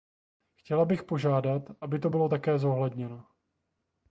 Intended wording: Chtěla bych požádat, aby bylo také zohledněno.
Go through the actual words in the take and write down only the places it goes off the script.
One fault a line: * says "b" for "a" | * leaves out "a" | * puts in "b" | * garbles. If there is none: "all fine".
* puts in "to"